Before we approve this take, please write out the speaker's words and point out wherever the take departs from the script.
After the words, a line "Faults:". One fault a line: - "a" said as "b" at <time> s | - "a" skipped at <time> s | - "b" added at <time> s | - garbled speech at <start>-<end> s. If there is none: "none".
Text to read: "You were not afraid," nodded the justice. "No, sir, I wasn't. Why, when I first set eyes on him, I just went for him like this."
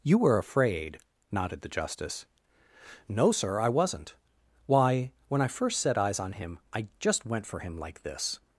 "You were afraid," nodded the justice. "No, sir, I wasn't. Why, when I first set eyes on him, I just went for him like this."
Faults:
- "not" skipped at 0.4 s